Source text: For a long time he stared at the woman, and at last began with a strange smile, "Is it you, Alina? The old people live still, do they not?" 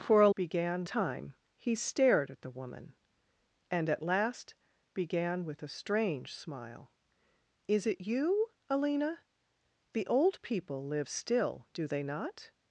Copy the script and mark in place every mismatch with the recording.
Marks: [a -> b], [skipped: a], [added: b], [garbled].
For a [long -> began] time he stared at the woman, and at last began with a strange smile, "Is it you, Alina? The old people live still, do they not?"